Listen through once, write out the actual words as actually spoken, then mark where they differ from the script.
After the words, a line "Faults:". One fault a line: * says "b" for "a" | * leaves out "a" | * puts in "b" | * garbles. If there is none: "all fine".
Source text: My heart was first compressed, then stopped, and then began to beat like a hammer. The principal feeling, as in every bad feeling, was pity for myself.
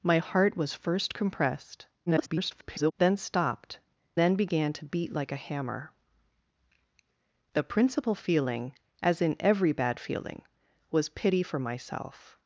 My heart was first compressed, [garbled] then stopped, then began to beat like a hammer. The principal feeling, as in every bad feeling, was pity for myself.
Faults:
* garbles
* leaves out "and"